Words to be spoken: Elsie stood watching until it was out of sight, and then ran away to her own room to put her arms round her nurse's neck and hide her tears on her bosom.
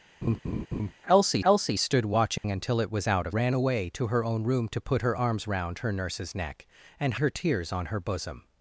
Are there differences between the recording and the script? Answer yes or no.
yes